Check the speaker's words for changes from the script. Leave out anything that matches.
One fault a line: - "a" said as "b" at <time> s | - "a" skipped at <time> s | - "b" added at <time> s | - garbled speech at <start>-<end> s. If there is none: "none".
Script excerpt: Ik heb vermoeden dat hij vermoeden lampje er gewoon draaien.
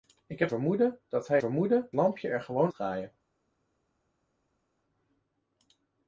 none